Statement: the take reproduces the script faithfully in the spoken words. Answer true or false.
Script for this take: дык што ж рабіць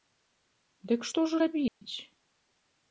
true